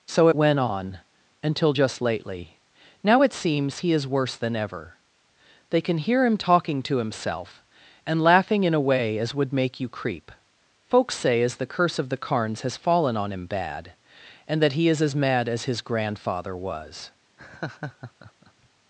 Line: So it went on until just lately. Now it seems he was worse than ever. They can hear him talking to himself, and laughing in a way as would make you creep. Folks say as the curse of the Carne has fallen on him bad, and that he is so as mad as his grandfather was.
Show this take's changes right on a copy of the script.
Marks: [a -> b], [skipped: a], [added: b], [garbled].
So it went on until just lately. Now it seems he [was -> is] worse than ever. They can hear him talking to himself, and laughing in a way as would make you creep. Folks say as the curse of the [Carne -> Carnes] has fallen on him bad, and that he is [skipped: so] as mad as his grandfather was.